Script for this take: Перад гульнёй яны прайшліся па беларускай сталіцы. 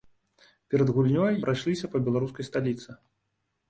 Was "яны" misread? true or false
true